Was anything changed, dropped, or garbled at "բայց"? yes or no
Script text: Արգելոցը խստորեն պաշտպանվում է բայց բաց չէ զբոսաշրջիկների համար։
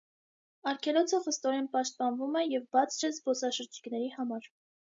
yes